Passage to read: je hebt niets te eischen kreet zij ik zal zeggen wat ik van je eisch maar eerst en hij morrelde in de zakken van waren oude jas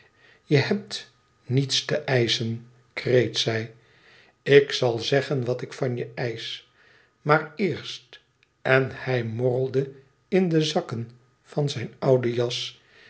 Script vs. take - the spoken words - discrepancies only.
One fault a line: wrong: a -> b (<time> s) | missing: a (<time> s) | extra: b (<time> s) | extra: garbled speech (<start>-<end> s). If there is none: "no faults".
wrong: waren -> zijn (11.7 s)